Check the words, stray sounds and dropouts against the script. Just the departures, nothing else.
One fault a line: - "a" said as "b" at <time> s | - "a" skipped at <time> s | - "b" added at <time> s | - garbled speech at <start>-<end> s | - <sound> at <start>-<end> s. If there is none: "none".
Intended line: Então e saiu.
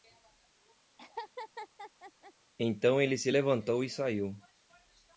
- laugh at 1.0-2.3 s
- "ele se levantou" added at 3.0 s